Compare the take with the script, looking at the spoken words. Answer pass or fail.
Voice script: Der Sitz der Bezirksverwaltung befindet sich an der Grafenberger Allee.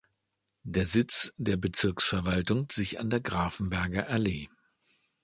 fail